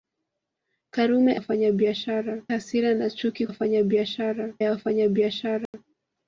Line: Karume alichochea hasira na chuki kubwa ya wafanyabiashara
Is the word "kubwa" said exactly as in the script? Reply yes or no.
no